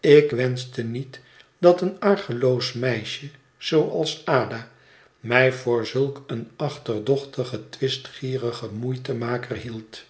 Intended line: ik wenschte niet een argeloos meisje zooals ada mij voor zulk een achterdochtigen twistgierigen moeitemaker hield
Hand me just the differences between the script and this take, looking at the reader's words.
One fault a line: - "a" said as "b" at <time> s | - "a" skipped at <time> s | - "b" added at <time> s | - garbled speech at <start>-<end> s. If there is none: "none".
- "dat" added at 1.6 s